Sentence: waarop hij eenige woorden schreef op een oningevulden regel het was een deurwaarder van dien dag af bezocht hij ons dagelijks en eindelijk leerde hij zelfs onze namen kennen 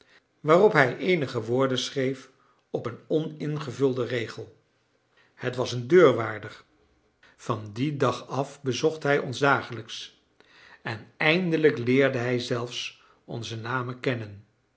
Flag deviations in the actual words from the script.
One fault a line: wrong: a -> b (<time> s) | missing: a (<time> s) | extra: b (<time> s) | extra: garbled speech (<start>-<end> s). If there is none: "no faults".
no faults